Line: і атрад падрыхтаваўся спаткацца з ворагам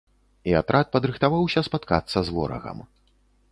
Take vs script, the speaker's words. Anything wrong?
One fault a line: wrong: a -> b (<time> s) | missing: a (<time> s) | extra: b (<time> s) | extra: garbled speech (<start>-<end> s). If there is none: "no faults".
no faults